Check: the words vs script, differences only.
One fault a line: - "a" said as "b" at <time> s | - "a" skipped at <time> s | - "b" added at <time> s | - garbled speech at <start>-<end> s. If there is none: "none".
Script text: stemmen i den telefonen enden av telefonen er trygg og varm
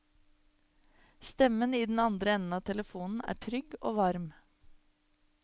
- "telefonen" said as "andre" at 2.0 s